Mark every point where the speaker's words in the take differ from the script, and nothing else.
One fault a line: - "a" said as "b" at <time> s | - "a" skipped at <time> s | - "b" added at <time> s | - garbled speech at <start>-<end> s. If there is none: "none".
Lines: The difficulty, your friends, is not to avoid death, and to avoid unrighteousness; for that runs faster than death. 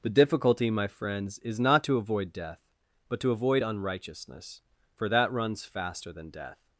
- "your" said as "my" at 0.7 s
- "and" said as "but" at 3.1 s